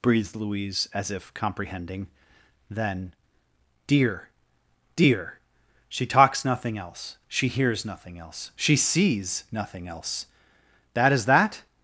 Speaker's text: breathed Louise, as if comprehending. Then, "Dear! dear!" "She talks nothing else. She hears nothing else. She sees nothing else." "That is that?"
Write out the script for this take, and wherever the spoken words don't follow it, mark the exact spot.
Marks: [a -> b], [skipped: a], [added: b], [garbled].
breathed Louise, as if comprehending. Then, "Dear! dear!" "She talks nothing else. She hears nothing else. She sees nothing else." "That is that?"